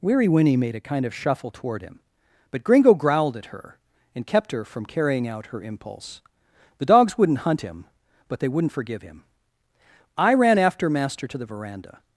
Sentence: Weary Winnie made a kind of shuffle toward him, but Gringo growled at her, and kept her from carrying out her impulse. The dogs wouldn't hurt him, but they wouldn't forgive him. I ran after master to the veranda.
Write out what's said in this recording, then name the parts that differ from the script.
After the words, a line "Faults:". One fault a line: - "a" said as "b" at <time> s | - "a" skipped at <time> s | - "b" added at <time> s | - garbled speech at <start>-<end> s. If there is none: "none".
Weary Winnie made a kind of shuffle toward him, but Gringo growled at her, and kept her from carrying out her impulse. The dogs wouldn't hunt him, but they wouldn't forgive him. I ran after master to the veranda.
Faults:
- "hurt" said as "hunt" at 7.4 s